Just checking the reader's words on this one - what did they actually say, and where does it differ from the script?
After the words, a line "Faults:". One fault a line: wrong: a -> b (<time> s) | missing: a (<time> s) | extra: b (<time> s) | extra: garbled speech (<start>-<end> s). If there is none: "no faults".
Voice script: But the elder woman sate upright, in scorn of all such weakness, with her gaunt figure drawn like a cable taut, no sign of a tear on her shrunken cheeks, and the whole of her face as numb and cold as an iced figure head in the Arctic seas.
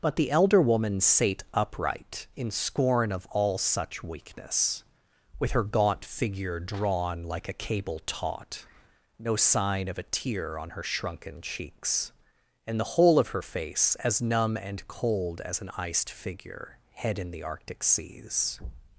But the elder woman sate upright, in scorn of all such weakness, with her gaunt figure drawn like a cable taut, no sign of a tear on her shrunken cheeks, and the whole of her face as numb and cold as an iced figure head in the Arctic seas.
Faults:
no faults